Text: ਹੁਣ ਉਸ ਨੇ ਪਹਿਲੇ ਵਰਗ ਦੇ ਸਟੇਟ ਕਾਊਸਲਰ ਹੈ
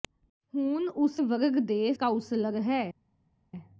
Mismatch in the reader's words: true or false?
true